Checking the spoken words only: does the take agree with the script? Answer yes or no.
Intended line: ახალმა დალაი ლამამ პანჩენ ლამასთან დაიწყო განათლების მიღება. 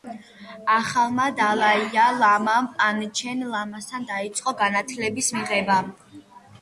yes